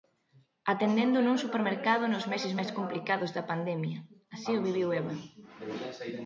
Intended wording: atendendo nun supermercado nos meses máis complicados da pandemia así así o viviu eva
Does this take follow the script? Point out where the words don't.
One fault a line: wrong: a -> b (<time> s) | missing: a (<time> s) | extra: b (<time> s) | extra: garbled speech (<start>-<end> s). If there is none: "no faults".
missing: así (4.5 s)